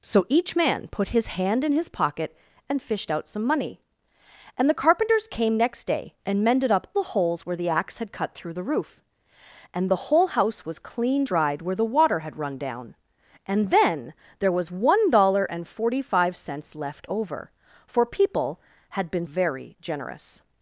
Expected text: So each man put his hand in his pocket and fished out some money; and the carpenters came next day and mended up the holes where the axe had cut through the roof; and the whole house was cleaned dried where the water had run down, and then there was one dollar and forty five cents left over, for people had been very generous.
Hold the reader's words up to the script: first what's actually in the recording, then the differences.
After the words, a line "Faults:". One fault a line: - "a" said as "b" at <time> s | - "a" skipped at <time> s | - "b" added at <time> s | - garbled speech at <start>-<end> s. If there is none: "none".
So each man put his hand in his pocket and fished out some money; and the carpenters came next day and mended up the holes where the axe had cut through the roof; and the whole house was cleaned dried where the water had run down, and then there was one dollar and forty five cents left over, for people had been very generous.
Faults:
none